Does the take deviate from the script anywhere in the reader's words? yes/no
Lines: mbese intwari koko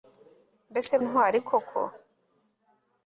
no